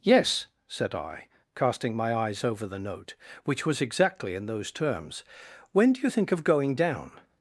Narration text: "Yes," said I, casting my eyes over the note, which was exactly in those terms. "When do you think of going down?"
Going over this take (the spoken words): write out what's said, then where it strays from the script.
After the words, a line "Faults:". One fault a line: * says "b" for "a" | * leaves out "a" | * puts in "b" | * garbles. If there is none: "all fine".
"Yes," said I, casting my eyes over the note, which was exactly in those terms. "When do you think of going down?"
Faults:
all fine